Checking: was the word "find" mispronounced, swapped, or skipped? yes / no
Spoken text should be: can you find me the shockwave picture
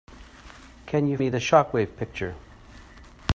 yes